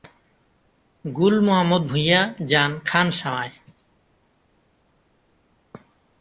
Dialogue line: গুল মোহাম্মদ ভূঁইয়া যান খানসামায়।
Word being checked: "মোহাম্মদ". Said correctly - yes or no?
yes